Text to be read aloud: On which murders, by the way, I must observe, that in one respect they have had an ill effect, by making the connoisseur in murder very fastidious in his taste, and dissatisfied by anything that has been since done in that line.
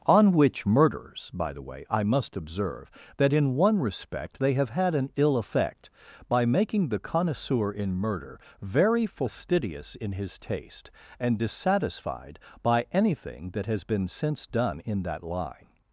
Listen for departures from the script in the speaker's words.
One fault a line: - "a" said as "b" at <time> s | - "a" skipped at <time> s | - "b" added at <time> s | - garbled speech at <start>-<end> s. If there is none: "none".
none